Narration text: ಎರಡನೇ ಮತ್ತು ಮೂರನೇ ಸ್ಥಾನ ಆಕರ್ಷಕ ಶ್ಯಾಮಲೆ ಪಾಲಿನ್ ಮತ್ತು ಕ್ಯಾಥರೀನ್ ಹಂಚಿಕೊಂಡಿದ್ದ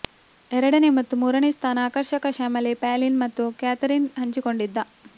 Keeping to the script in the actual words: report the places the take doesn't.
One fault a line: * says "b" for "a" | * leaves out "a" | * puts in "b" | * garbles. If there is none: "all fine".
all fine